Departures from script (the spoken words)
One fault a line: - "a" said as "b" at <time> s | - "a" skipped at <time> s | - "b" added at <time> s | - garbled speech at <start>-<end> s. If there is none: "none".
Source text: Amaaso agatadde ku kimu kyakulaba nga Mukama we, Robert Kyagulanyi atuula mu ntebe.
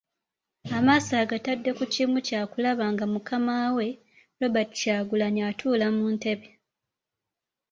none